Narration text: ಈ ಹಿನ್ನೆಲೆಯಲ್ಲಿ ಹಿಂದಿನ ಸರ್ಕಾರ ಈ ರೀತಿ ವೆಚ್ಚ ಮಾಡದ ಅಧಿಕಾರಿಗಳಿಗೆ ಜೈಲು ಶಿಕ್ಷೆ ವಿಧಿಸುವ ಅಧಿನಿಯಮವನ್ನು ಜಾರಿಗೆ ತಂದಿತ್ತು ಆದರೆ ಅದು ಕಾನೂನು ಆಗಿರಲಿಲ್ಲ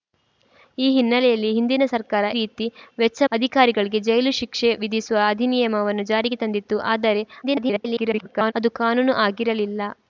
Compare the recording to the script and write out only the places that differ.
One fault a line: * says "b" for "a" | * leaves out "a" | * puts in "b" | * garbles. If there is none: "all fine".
* leaves out "ಈ"
* leaves out "ಮಾಡದ"
* garbles